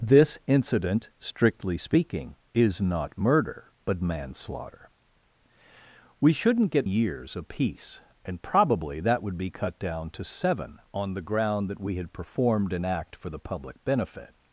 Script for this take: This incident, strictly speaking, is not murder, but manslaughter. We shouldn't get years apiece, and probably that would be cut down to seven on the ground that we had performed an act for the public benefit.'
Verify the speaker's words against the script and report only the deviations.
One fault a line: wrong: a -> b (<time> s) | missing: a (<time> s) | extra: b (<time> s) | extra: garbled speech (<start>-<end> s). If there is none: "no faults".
no faults